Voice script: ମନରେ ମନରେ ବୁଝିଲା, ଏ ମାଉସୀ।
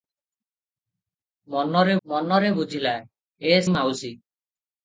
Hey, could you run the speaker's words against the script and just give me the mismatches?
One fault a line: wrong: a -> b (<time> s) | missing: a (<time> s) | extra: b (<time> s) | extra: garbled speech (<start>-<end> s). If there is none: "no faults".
no faults